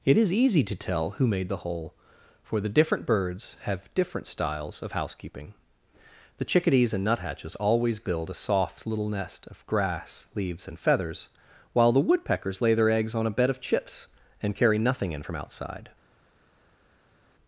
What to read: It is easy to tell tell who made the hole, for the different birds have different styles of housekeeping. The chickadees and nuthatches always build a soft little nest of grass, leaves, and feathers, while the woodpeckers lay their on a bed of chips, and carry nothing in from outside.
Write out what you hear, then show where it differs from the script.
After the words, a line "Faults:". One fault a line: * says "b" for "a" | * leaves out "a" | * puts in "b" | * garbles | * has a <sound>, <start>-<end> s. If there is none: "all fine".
It is easy to tell who made the hole, for the different birds have different styles of housekeeping. The chickadees and nuthatches always build a soft little nest of grass, leaves, and feathers, while the woodpeckers lay their eggs on a bed of chips, and carry nothing in from outside.
Faults:
* leaves out "tell"
* puts in "eggs"